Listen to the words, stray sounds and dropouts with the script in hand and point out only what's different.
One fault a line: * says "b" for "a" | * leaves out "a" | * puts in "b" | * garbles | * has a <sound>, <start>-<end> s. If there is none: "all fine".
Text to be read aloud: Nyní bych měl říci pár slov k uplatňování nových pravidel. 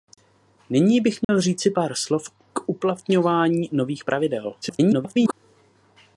* has a dropout, 1.2-1.3 s
* garbles